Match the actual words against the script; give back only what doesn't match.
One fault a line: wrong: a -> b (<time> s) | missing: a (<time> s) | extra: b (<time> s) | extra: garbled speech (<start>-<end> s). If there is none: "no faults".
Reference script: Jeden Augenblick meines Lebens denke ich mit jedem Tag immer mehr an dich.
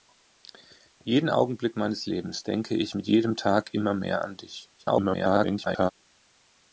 extra: garbled speech (4.8-5.9 s)